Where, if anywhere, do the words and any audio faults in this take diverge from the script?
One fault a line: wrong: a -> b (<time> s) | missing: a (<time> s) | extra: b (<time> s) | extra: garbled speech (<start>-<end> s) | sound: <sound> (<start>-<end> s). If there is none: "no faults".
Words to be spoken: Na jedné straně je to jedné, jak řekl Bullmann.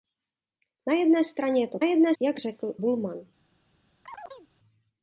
sound: chirp (4.0-4.5 s)